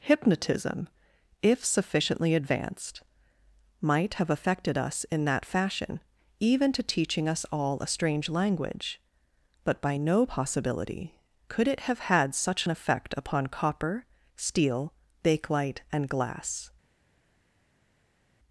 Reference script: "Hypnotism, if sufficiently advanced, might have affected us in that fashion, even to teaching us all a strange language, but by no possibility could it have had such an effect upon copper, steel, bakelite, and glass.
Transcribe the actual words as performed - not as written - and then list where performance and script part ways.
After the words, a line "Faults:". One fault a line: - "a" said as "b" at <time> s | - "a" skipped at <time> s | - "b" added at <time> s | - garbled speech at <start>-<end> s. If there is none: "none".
"Hypnotism, if sufficiently advanced, might have affected us in that fashion, even to teaching us all a strange language, but by no possibility could it have had such an effect upon copper, steel, bakelite, and glass.
Faults:
none